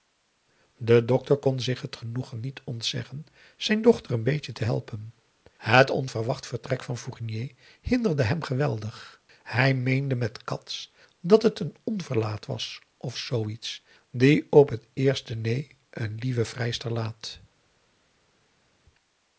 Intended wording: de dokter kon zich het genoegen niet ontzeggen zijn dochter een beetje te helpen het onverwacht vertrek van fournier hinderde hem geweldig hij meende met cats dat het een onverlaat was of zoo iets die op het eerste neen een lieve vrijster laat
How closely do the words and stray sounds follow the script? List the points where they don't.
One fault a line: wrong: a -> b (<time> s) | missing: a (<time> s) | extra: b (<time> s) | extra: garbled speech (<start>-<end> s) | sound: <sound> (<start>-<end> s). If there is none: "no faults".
no faults